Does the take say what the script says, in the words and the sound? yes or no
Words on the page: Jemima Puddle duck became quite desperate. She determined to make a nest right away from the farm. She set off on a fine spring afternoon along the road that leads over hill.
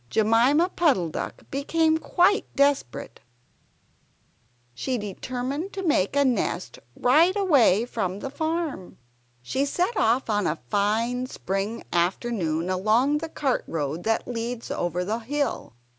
no